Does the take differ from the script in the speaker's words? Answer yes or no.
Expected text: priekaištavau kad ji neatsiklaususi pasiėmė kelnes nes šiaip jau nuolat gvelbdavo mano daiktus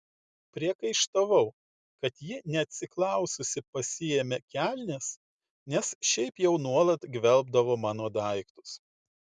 no